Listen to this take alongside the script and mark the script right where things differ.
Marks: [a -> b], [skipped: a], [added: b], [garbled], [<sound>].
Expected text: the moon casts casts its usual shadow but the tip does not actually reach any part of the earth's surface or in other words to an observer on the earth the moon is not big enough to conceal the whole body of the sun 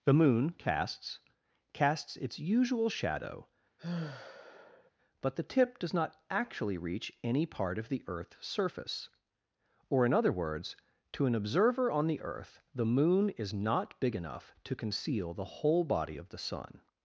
the moon casts casts its usual shadow [sigh] but the tip does not actually reach any part of the earth's surface or in other words to an observer on the earth the moon is not big enough to conceal the whole body of the sun